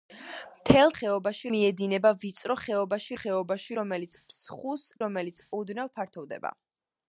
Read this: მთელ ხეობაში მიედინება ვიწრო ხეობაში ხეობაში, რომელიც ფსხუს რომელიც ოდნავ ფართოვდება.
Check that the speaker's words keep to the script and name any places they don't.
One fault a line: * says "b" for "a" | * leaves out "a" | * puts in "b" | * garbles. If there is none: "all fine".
all fine